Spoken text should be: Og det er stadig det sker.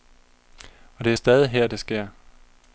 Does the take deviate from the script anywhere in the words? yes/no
yes